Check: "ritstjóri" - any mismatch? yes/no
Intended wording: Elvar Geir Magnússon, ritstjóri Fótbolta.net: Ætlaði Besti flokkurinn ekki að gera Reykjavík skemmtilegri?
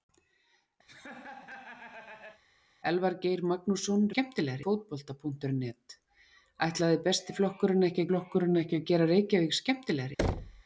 yes